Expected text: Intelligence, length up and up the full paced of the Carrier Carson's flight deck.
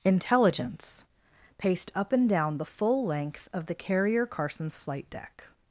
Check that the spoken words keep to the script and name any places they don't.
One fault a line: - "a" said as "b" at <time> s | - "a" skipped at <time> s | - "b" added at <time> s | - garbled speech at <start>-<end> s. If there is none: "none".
- "length" said as "paced" at 1.6 s
- "up" said as "down" at 2.3 s
- "paced" said as "length" at 3.0 s